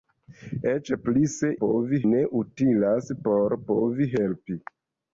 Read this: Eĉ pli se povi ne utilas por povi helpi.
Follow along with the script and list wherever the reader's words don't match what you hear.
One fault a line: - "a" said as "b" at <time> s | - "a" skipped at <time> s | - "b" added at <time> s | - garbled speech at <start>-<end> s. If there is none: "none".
none